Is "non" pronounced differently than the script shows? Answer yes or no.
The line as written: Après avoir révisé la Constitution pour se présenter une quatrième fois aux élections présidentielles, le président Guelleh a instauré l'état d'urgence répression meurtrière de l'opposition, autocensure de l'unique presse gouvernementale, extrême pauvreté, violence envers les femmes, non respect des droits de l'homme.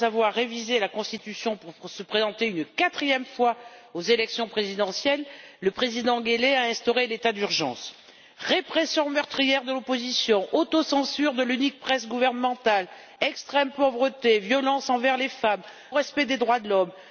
yes